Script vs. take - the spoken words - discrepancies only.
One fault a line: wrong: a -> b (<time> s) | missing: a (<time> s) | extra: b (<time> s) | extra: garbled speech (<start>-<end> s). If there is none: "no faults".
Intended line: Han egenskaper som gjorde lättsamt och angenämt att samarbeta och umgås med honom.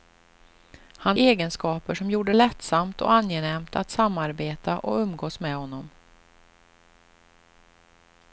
no faults